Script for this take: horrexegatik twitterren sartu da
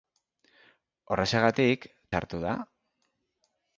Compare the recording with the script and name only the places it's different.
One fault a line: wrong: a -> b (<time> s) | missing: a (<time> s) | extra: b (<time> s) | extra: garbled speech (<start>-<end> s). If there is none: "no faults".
missing: twitterren (1.9 s)